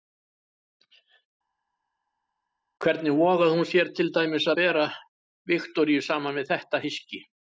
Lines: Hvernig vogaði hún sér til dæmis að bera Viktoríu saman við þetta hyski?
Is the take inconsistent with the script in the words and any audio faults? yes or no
yes